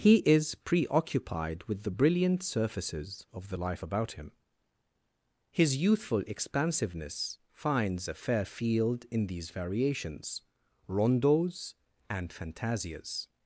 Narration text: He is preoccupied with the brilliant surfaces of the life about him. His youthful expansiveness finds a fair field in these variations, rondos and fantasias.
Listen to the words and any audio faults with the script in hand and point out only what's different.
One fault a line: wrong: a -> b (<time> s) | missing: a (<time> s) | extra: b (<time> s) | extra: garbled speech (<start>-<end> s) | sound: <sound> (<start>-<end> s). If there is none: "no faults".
no faults